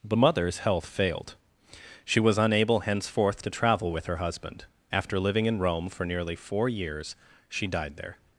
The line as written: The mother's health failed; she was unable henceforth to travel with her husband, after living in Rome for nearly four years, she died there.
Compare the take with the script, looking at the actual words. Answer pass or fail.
pass